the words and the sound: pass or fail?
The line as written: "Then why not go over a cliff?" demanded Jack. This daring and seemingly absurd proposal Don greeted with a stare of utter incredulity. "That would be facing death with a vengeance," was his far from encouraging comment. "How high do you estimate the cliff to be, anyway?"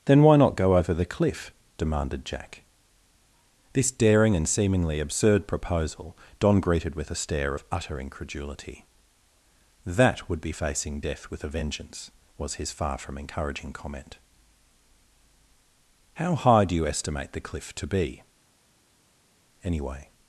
fail